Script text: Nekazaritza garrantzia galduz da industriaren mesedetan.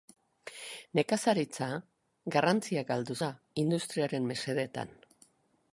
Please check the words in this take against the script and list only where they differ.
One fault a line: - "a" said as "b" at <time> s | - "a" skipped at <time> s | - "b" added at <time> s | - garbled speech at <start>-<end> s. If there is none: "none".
none